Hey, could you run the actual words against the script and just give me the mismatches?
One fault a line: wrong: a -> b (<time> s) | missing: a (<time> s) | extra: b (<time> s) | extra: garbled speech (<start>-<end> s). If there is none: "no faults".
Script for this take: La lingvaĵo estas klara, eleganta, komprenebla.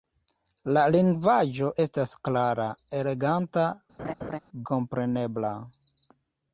no faults